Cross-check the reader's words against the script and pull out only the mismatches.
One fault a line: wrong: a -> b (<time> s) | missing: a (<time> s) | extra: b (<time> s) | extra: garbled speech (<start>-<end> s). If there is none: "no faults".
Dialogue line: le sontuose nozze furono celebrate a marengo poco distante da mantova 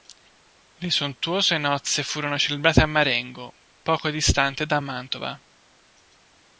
no faults